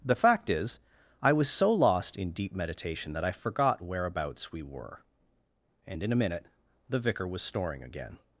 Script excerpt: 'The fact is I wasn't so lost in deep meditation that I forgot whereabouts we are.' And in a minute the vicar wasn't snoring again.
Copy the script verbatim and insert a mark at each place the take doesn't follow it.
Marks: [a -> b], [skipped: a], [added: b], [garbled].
'The fact is I [wasn't -> was] so lost in deep meditation that I forgot whereabouts we [are.' -> were] And in a minute the vicar [wasn't -> was] snoring again.